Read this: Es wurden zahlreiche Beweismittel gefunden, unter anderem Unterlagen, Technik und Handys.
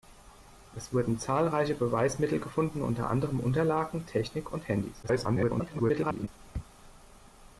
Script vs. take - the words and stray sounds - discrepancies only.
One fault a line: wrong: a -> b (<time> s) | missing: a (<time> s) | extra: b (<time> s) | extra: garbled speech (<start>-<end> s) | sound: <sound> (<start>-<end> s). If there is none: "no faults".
extra: garbled speech (5.0-6.3 s)